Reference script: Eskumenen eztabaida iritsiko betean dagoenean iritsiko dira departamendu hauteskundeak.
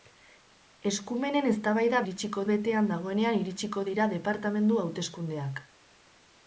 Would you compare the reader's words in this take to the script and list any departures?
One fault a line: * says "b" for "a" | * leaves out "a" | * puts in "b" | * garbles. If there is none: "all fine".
all fine